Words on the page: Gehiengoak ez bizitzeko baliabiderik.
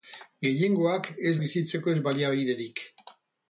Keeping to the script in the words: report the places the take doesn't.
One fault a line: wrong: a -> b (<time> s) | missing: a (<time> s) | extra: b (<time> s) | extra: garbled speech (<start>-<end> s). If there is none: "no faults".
no faults